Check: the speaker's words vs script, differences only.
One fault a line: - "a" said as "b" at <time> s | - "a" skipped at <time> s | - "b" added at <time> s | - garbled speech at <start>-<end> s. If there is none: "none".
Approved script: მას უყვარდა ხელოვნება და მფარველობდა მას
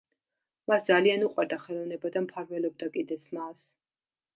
- "ძალიან" added at 0.9 s
- "კიდეც" added at 3.0 s